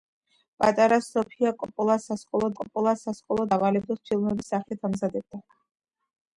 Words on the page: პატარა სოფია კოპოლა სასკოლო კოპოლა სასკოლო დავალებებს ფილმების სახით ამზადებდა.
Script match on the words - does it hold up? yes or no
yes